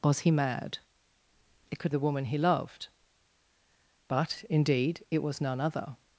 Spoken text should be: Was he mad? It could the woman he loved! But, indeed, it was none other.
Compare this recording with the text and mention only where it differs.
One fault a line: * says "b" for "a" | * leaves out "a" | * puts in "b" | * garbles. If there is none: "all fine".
all fine